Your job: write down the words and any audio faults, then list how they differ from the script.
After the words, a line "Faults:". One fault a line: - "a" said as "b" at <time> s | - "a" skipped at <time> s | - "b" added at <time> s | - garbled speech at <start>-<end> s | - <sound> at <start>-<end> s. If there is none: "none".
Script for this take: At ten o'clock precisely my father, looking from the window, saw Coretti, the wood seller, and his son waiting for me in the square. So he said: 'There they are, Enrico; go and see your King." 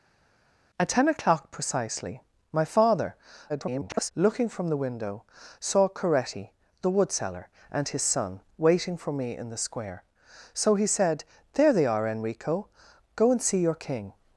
At ten o'clock precisely my father, [garbled] looking from the window, saw Coretti, the wood seller, and his son waiting for me in the square. So he said: 'There they are, Enrico; go and see your King."
Faults:
- garbled speech at 3.5-4.1 s